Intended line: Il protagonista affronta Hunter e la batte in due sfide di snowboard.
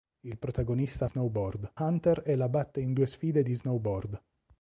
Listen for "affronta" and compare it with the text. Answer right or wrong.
wrong